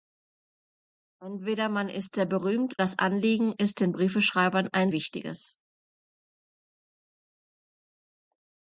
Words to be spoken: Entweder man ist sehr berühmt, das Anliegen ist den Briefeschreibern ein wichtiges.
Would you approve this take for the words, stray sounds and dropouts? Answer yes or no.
yes